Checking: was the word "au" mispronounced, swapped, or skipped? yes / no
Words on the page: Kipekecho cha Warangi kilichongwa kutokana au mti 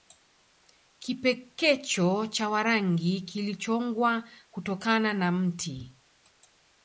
yes